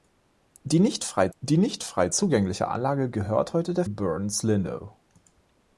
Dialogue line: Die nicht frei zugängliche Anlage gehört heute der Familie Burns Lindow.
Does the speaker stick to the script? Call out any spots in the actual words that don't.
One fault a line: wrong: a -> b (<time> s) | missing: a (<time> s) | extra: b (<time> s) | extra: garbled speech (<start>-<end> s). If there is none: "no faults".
extra: die nicht frei (1.4 s)
missing: Familie (3.8 s)